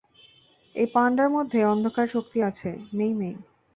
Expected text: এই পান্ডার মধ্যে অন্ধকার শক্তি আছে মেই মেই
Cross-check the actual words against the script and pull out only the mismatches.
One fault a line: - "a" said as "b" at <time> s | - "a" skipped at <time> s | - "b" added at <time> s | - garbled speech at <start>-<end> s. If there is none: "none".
none